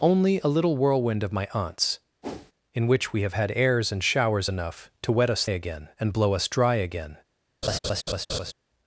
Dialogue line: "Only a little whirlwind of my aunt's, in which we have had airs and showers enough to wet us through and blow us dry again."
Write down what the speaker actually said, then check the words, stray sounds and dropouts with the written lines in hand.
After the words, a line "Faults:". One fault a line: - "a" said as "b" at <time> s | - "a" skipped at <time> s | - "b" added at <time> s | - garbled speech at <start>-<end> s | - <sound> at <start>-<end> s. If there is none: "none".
"Only a little whirlwind of my aunt's, in which we have had airs and showers enough to wet us again and blow us dry again."
Faults:
- whoosh at 2.2-2.5 s
- "through" said as "again" at 5.5 s
- laugh at 7.6-8.5 s